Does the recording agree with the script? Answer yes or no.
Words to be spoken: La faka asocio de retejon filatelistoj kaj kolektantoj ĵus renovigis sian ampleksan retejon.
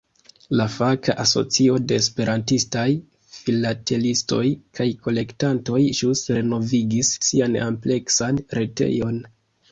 no